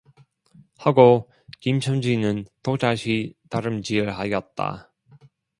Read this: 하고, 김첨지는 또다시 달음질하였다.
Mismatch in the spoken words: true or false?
false